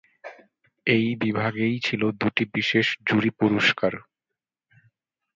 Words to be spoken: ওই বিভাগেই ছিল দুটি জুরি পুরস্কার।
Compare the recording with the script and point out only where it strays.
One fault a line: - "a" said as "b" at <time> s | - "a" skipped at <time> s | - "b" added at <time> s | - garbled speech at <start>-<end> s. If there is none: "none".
- "ওই" said as "এই" at 0.9 s
- "বিশেষ" added at 2.5 s